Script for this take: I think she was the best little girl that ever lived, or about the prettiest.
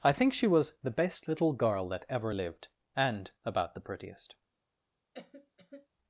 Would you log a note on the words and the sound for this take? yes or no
yes